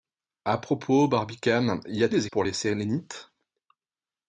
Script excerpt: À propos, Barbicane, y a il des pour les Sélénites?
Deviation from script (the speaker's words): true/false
false